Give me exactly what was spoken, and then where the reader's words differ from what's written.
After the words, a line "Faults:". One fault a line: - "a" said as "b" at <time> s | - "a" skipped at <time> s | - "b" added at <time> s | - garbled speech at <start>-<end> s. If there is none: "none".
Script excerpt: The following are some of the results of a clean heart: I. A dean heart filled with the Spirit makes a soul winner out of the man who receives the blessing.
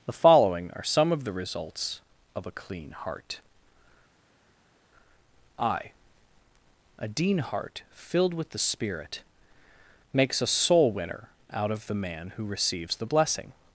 The following are some of the results of a clean heart: I. A dean heart filled with the Spirit makes a soul winner out of the man who receives the blessing.
Faults:
none